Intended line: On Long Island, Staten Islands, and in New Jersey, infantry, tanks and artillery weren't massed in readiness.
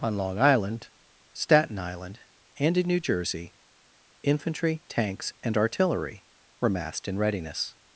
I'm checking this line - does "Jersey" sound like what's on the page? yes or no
yes